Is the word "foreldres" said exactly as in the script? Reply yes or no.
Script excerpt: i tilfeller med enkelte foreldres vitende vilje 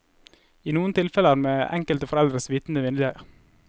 yes